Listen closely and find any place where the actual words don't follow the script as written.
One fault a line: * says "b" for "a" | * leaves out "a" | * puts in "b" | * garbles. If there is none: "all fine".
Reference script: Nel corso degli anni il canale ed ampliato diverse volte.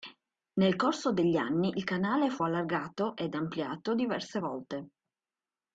* puts in "fu allargato"